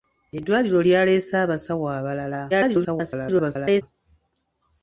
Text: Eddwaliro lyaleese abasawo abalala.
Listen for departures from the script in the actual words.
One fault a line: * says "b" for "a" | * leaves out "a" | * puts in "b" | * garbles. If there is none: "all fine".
* garbles